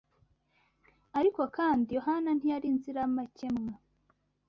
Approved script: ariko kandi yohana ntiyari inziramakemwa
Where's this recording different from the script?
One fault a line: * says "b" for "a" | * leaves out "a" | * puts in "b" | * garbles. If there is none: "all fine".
all fine